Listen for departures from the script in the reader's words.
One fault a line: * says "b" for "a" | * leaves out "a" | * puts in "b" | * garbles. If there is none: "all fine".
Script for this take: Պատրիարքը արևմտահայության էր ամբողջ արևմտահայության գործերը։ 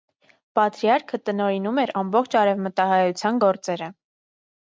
* says "տնօրինում" for "արևմտահայության"